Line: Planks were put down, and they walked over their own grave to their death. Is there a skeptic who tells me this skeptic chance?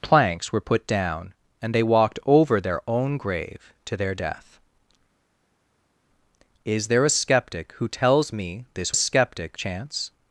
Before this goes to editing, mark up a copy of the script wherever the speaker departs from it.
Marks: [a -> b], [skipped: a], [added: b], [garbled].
Planks were put down, and they walked over their own grave to their death. Is there a skeptic who tells me this skeptic chance?